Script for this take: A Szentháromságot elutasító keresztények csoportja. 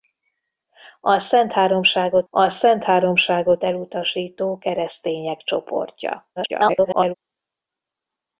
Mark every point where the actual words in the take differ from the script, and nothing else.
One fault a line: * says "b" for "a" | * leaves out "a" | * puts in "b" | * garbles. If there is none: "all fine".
* puts in "a Szentháromságot"
* garbles